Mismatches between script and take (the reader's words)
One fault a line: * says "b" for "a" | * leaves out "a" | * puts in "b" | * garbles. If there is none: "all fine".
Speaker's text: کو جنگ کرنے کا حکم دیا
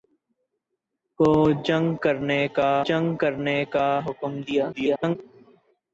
* puts in "جنگ کرنے کا"
* garbles